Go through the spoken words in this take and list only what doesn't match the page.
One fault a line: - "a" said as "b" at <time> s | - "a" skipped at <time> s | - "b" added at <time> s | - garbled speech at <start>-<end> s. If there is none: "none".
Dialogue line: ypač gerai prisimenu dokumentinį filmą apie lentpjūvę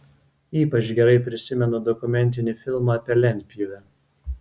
none